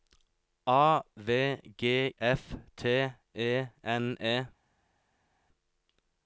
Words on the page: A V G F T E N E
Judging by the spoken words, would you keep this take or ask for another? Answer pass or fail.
pass